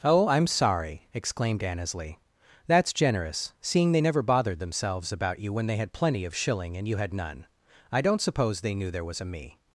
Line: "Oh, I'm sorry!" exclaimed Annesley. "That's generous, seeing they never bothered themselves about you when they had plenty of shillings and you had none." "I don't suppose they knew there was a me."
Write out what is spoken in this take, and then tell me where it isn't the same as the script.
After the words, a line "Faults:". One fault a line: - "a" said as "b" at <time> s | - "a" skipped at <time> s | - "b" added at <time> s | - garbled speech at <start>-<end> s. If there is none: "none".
"Oh, I'm sorry!" exclaimed Annesley. "That's generous, seeing they never bothered themselves about you when they had plenty of shilling and you had none." "I don't suppose they knew there was a me."
Faults:
- "shillings" said as "shilling" at 6.3 s